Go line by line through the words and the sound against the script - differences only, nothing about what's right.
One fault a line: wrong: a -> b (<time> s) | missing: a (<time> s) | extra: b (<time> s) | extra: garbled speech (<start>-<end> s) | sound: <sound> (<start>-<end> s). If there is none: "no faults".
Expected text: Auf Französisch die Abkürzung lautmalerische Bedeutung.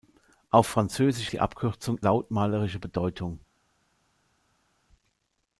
no faults